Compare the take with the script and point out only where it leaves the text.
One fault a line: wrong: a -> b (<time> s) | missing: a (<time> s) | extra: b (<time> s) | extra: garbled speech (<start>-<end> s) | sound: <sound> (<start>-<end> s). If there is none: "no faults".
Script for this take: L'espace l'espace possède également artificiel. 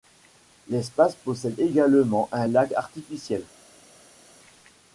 missing: l'espace (1.1 s)
extra: un lac (2.3 s)